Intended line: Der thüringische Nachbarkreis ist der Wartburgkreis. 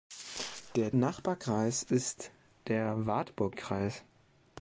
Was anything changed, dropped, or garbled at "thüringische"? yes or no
yes